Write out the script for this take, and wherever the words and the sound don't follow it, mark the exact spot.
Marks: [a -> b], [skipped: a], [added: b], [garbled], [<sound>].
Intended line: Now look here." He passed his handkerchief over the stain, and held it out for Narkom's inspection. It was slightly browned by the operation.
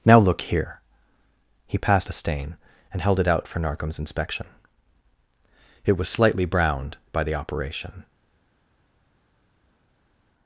Now look here." He passed [skipped: his handkerchief over] the stain, and held it out for Narkom's inspection. It was slightly browned by the operation.